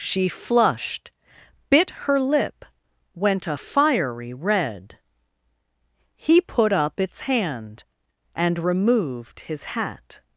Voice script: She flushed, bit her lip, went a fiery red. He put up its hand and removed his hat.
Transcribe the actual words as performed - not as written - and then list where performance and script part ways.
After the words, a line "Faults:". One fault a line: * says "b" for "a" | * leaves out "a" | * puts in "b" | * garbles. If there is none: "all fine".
She flushed, bit her lip, went a fiery red. He put up its hand and removed his hat.
Faults:
all fine